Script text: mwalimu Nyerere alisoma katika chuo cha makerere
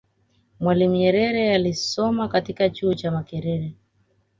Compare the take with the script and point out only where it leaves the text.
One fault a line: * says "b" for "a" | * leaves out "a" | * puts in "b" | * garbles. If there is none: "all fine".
all fine